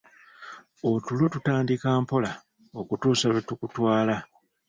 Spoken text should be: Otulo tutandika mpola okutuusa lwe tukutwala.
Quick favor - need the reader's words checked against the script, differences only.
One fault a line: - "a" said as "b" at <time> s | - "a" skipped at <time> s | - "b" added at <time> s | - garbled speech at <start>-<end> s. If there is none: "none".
none